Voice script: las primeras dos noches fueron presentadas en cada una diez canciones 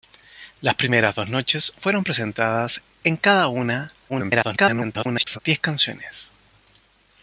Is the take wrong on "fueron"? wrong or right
right